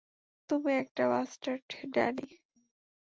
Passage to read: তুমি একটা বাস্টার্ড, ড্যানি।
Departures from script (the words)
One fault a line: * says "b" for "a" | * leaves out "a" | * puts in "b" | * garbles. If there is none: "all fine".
all fine